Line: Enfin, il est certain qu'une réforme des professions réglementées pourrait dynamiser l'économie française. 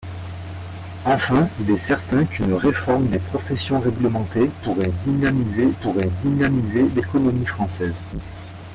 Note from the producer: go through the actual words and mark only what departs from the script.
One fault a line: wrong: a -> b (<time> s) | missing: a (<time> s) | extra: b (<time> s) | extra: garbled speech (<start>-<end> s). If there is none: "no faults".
extra: pourrait dynamiser (5.8 s)